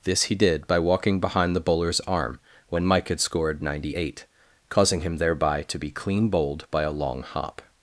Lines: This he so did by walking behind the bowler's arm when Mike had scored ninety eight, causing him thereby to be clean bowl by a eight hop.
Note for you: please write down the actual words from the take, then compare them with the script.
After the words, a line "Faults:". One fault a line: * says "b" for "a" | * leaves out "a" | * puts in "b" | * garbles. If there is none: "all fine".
This he did by walking behind the bowler's arm when Mike had scored ninety eight, causing him thereby to be clean bowled by a long hop.
Faults:
* leaves out "so"
* says "bowled" for "bowl"
* says "long" for "eight"